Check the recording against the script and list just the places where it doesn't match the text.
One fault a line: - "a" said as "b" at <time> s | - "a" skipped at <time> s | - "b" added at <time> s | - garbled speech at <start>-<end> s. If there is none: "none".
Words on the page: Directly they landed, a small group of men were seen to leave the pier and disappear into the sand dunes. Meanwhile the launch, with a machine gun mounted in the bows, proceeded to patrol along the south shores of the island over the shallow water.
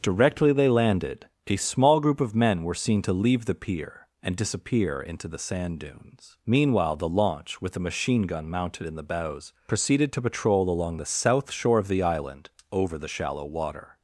- "shores" said as "shore" at 11.5 s